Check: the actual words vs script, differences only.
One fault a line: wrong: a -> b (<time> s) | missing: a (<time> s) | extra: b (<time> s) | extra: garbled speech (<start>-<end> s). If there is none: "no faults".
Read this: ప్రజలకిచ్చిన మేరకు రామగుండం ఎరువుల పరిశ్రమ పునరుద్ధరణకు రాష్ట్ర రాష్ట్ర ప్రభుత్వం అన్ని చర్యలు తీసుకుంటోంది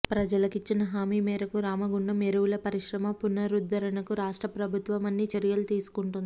extra: హామీ (0.9 s)
missing: రాష్ట్ర (4.5 s)